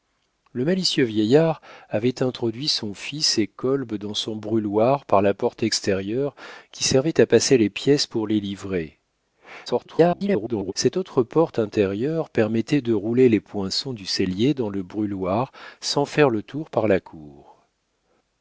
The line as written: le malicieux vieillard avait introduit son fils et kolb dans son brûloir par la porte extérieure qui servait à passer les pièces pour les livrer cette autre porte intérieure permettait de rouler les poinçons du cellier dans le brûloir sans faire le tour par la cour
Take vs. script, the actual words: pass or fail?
fail